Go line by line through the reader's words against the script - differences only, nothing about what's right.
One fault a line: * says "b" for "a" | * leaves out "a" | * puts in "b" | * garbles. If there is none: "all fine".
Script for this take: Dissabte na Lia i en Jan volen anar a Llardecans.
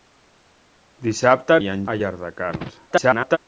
* leaves out "na Lia"
* leaves out "Jan volen anar"
* garbles